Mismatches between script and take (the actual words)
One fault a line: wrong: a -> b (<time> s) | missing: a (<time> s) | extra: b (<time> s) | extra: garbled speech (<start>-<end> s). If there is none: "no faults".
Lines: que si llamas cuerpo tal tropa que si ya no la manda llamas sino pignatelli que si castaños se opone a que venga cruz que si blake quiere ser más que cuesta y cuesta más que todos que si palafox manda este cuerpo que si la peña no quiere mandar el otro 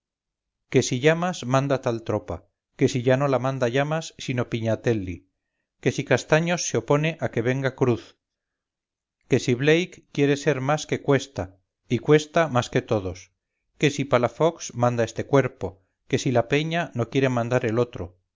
wrong: cuerpo -> manda (1.5 s)